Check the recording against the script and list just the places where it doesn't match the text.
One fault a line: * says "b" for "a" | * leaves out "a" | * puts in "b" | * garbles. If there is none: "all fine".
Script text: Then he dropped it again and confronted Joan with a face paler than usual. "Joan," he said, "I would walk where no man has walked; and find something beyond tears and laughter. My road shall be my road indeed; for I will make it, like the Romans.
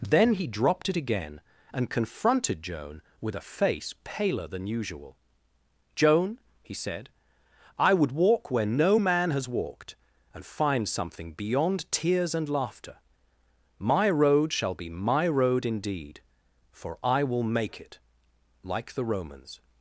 all fine